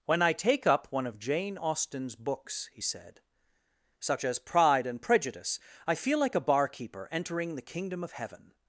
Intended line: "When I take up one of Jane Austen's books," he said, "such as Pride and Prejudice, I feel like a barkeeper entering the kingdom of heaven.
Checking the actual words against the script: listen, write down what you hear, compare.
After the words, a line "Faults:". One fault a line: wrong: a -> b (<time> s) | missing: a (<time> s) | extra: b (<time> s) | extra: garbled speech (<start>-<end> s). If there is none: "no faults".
"When I take up one of Jane Austen's books," he said, "such as Pride and Prejudice, I feel like a barkeeper entering the kingdom of heaven.
Faults:
no faults